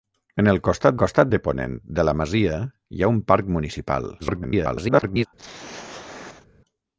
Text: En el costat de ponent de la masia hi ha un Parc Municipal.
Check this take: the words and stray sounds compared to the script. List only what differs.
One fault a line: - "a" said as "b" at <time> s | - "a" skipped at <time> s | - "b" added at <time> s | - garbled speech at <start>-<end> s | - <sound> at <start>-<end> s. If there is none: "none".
- "costat" added at 1.0 s
- garbled speech at 4.2-5.3 s
- throat clearing at 5.4-6.5 s